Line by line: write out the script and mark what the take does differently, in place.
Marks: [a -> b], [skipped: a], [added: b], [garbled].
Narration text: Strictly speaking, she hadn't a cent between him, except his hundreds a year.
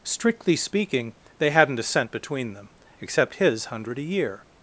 Strictly speaking, [she -> they] hadn't a cent between [him, -> them] except his [hundreds -> hundred] a year.